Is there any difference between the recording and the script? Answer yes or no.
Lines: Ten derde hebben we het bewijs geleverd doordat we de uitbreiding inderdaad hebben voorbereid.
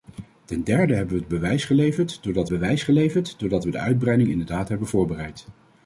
yes